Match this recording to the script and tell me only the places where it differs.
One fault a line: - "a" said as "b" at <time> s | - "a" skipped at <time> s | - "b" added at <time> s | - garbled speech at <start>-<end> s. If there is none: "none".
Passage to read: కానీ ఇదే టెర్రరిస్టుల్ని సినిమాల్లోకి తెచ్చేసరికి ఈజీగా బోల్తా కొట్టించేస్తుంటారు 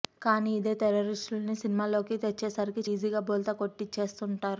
none